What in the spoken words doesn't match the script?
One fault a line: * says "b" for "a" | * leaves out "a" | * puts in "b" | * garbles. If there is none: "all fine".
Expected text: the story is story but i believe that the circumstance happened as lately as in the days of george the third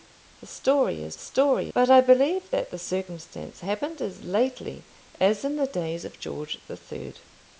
all fine